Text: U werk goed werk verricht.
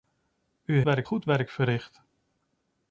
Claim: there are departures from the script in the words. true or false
false